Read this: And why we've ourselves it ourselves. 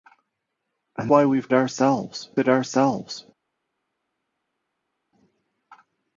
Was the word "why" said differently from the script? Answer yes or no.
no